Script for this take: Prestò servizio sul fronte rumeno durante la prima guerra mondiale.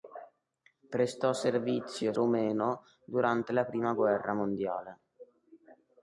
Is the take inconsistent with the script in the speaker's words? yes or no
yes